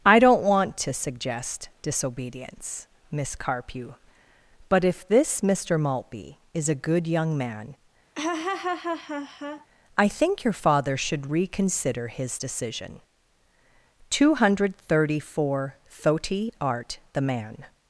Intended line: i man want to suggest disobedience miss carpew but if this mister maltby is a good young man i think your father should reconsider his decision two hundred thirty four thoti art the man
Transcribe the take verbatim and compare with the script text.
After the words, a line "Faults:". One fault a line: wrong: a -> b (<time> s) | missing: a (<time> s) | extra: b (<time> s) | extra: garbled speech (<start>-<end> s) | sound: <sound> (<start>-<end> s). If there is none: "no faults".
i don't want to suggest disobedience miss carpew but if this mister maltby is a good young man i think your father should reconsider his decision two hundred thirty four thoti art the man
Faults:
wrong: man -> don't (0.2 s)
sound: laugh (8.1-9.7 s)